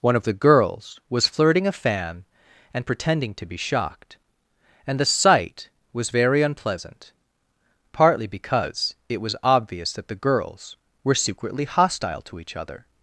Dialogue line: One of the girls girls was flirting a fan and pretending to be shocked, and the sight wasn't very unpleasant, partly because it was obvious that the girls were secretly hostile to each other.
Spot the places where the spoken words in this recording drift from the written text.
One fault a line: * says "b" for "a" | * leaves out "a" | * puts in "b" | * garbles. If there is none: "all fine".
* leaves out "girls"
* says "was" for "wasn't"